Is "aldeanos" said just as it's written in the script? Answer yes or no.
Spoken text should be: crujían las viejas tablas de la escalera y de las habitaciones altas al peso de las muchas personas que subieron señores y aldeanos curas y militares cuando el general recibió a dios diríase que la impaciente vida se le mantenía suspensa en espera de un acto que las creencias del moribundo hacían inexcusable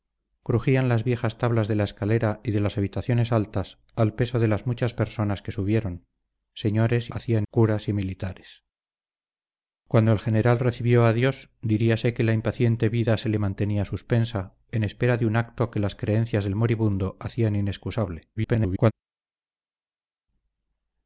no